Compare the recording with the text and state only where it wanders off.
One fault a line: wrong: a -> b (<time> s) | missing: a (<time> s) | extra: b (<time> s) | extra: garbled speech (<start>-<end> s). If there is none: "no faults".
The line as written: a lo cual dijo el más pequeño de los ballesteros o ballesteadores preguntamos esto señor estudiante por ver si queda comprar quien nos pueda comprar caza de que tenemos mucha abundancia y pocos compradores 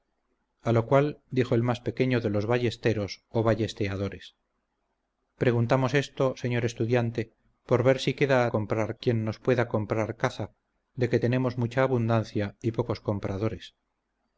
no faults